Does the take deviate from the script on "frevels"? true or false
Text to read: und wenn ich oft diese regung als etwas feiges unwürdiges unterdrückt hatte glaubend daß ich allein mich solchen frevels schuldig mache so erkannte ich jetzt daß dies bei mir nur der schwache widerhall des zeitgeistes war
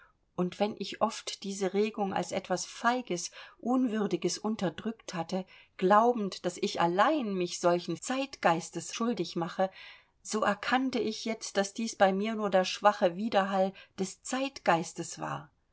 true